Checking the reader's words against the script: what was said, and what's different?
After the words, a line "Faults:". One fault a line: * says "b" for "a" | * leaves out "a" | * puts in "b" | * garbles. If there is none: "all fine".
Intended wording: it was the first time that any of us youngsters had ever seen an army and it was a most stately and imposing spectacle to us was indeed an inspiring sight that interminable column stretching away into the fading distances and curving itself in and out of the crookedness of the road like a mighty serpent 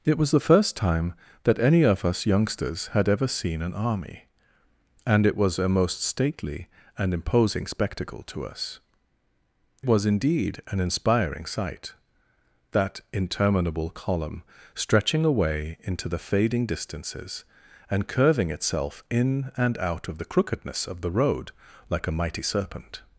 it was the first time that any of us youngsters had ever seen an army and it was a most stately and imposing spectacle to us was indeed an inspiring sight that interminable column stretching away into the fading distances and curving itself in and out of the crookedness of the road like a mighty serpent
Faults:
all fine